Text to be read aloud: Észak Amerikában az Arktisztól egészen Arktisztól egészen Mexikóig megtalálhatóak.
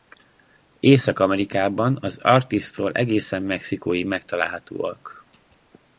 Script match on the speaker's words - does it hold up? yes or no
no